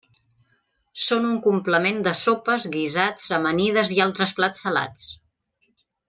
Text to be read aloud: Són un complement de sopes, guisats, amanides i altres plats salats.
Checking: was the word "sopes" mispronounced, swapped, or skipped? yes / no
no